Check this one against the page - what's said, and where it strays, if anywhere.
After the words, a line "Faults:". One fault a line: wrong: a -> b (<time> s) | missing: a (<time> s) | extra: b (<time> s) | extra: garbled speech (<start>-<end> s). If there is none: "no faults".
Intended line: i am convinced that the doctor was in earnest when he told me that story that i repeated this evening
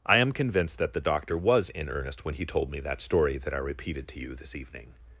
i am convinced that the doctor was in earnest when he told me that story that i repeated to you this evening
Faults:
extra: to you (4.1 s)